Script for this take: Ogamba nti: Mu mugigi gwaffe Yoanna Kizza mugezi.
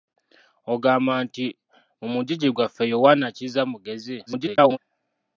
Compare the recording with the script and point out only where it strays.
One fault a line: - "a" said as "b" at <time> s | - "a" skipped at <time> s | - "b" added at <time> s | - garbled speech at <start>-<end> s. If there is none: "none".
- garbled speech at 4.3-4.8 s